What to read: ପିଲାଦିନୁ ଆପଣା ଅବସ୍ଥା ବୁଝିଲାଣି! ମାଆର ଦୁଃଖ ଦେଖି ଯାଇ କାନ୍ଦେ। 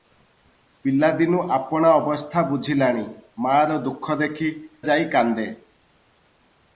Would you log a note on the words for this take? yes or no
no